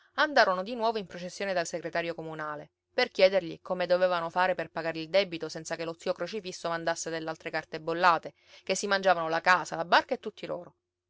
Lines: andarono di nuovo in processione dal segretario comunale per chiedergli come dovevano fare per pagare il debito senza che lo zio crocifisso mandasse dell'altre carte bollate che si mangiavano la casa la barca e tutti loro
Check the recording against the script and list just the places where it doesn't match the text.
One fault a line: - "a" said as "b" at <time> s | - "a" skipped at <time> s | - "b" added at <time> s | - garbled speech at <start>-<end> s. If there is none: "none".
none